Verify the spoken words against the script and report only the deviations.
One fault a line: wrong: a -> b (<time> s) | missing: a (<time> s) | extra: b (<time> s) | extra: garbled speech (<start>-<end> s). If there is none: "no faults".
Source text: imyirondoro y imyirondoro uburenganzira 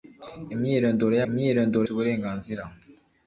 no faults